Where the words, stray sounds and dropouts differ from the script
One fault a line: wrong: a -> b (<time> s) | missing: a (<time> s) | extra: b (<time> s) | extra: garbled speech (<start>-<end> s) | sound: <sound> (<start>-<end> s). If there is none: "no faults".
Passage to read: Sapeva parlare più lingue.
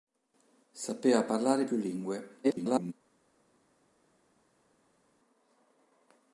extra: garbled speech (2.4-2.9 s)